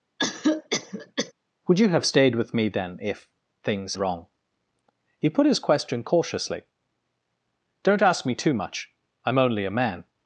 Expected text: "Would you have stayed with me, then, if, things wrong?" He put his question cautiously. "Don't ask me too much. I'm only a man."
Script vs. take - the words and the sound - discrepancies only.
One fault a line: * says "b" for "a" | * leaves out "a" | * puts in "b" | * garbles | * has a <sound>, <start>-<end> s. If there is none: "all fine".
* has a cough, 0.2-1.3 s